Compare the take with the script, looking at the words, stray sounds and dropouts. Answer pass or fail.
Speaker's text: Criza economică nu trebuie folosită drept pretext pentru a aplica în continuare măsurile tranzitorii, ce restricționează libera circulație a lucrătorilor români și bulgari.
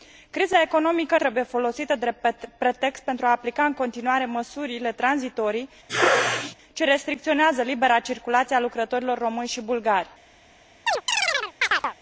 fail